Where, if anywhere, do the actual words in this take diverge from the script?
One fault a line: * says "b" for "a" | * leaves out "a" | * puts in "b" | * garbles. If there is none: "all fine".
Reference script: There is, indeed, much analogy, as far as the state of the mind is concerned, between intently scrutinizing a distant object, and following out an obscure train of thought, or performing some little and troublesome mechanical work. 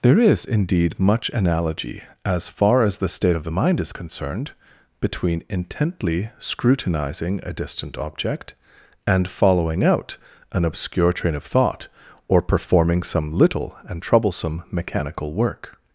all fine